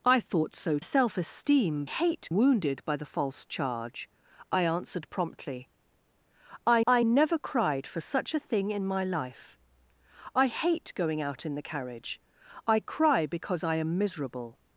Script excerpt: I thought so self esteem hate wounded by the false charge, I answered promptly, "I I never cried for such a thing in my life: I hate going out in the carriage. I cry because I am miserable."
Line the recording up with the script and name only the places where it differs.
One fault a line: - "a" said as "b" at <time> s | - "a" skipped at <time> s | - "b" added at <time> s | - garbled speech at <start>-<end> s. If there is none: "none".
none